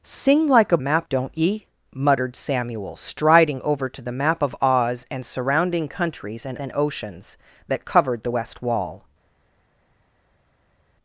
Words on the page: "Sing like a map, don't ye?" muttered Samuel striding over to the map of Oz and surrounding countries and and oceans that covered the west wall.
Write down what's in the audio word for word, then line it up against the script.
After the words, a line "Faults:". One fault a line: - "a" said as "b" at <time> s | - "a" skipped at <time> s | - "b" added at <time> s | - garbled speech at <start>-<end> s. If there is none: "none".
"Sing like a map, don't ye?" muttered Samuel striding over to the map of Oz and surrounding countries and and oceans that covered the west wall.
Faults:
none